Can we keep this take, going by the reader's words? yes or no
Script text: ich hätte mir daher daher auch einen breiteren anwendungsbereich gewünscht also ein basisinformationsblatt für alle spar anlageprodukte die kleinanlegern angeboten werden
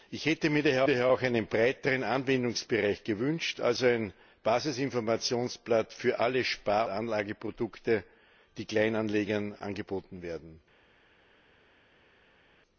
yes